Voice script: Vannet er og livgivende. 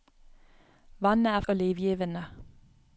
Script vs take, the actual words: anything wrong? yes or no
no